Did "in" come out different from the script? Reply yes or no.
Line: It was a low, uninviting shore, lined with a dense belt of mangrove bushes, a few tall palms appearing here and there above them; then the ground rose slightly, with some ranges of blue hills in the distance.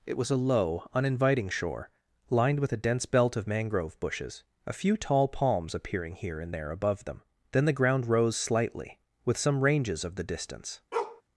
yes